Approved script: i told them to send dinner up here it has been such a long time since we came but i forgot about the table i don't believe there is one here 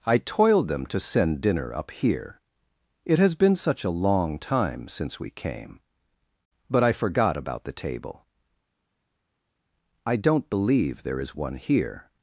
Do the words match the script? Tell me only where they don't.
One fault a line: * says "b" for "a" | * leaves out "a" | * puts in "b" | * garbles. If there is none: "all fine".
* says "toiled" for "told"